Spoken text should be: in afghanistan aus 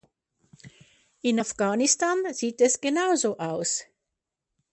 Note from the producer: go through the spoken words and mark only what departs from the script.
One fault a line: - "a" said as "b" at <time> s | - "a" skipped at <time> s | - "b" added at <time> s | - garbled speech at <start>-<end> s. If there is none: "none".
- "sieht es genauso" added at 2.3 s